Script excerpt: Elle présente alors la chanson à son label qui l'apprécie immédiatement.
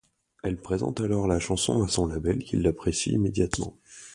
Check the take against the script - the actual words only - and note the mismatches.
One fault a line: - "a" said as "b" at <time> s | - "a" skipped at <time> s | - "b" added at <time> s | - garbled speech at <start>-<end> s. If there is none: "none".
none